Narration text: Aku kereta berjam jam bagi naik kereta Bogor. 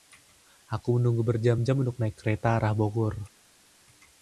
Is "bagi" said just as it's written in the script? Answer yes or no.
no